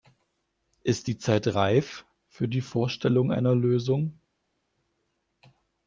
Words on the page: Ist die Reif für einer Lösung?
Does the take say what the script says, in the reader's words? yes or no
no